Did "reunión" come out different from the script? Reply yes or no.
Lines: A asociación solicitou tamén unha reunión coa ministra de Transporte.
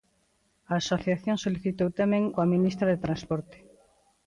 yes